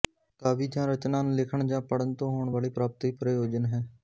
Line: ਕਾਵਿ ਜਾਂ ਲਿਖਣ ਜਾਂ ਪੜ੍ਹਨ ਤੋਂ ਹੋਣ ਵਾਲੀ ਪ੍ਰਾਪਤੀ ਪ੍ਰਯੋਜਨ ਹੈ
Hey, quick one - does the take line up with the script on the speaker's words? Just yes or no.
no